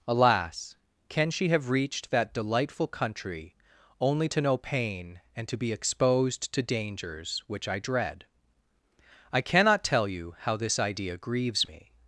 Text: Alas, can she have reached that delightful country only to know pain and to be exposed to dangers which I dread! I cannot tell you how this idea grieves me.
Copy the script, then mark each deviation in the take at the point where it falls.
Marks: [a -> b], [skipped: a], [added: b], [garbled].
Alas, can she have reached that delightful country only to know pain and to be exposed to dangers which I dread! I cannot tell you how this idea grieves me.